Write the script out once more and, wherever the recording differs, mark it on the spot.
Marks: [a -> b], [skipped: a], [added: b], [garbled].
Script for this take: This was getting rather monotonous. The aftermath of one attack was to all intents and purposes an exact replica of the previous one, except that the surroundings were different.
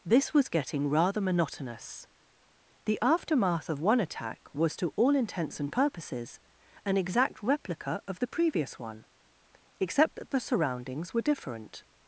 This was getting rather monotonous. The aftermath of one attack was to all intents and purposes an exact replica of the previous one, except that the surroundings were different.